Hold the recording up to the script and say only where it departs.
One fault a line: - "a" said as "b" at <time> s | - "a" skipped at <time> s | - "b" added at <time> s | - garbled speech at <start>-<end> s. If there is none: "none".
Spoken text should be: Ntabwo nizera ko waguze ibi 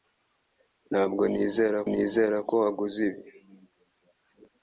- "nizera" added at 1.9 s